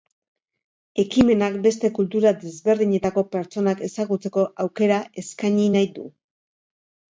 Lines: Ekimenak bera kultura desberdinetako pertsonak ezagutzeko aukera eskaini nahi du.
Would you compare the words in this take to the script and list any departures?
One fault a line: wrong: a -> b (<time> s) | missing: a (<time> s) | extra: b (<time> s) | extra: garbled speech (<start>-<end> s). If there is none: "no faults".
wrong: bera -> beste (1.6 s)